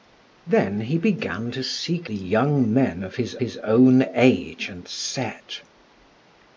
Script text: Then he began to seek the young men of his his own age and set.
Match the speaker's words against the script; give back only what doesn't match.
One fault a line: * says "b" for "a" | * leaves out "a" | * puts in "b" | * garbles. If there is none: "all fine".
all fine